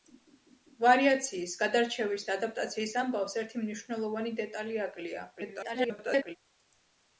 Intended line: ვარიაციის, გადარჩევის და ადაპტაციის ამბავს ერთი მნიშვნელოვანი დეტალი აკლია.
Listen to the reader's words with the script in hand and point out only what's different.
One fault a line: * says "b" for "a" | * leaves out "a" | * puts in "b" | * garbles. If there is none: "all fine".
* garbles